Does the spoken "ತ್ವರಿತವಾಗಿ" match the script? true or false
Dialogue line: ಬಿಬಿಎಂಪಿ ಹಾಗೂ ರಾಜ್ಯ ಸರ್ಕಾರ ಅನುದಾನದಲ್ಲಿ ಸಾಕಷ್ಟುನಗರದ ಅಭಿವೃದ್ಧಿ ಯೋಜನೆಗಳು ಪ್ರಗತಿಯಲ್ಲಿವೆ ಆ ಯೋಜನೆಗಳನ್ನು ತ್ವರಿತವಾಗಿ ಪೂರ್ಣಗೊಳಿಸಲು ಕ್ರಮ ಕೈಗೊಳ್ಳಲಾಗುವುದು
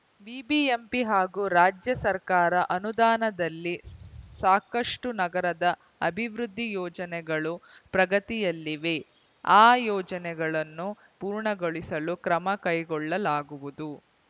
false